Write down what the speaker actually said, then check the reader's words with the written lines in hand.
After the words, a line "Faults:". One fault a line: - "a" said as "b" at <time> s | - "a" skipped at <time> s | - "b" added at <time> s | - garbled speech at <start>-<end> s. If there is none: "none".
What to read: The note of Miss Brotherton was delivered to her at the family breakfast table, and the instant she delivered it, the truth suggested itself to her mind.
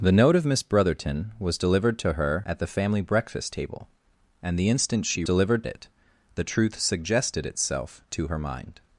The note of Miss Brotherton was delivered to her at the family breakfast table, and the instant she delivered it, the truth suggested itself to her mind.
Faults:
none